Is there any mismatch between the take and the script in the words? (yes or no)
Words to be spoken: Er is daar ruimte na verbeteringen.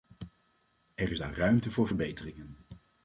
yes